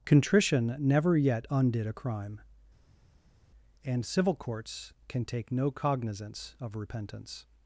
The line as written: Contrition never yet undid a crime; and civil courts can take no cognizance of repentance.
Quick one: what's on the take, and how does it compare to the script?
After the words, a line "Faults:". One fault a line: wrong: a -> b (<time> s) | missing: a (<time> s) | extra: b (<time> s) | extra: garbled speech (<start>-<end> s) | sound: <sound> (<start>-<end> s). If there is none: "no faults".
Contrition never yet undid a crime; and civil courts can take no cognizance of repentance.
Faults:
no faults